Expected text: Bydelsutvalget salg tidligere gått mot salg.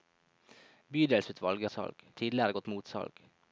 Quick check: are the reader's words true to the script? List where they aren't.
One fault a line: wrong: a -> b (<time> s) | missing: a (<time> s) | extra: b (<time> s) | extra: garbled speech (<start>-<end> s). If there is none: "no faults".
no faults